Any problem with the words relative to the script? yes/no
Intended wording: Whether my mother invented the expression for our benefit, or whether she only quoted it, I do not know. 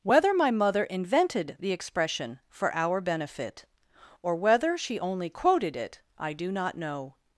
no